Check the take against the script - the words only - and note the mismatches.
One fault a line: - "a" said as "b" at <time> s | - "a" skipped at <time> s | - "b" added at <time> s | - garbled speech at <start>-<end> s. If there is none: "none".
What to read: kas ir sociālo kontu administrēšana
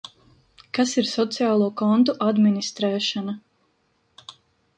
none